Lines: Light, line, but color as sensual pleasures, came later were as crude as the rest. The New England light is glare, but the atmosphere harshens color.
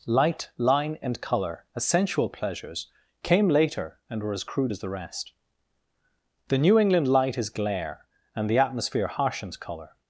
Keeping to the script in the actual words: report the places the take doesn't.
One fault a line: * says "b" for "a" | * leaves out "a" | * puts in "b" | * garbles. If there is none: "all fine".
* says "and" for "but"
* puts in "and"
* says "and" for "but"